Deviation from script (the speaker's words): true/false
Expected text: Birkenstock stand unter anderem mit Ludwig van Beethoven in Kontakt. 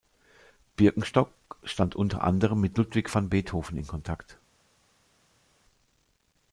false